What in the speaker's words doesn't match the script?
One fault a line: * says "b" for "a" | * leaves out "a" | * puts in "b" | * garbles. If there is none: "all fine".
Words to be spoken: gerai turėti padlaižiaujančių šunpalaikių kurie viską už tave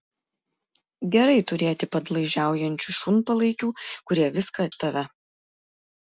all fine